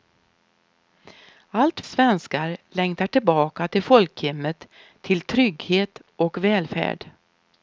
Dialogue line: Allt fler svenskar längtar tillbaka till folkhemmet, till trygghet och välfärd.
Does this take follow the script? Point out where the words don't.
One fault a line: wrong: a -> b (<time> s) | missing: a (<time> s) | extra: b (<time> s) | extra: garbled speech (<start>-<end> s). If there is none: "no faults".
missing: fler (1.8 s)